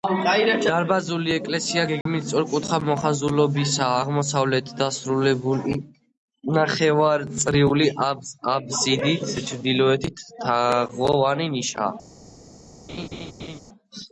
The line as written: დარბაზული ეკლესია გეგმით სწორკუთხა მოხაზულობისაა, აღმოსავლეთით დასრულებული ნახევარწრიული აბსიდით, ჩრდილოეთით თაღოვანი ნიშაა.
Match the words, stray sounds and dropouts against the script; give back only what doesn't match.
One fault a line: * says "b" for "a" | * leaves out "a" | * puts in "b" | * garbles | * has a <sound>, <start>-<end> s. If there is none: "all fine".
* has a dropout, 2.0-2.1 s
* has a laugh, 12.9-13.6 s